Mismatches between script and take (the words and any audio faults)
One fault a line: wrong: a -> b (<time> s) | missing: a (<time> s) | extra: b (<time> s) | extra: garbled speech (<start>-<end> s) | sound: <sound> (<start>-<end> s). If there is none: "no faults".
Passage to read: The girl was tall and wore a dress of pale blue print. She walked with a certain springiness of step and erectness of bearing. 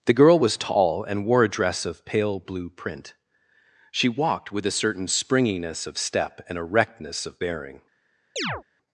sound: chirp (8.4-8.6 s)